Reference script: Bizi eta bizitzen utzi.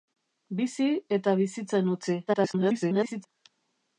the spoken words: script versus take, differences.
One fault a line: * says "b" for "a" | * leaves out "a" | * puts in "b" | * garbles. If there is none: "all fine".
* garbles